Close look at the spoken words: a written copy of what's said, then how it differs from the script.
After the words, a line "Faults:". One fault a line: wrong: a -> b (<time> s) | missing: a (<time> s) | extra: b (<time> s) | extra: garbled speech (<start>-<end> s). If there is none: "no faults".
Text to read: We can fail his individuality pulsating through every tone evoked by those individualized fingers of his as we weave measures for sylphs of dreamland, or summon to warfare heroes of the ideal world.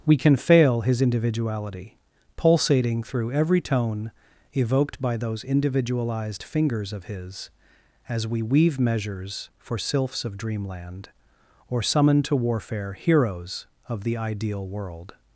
We can fail his individuality pulsating through every tone evoked by those individualized fingers of his as we weave measures for sylphs of dreamland, or summon to warfare heroes of the ideal world.
Faults:
no faults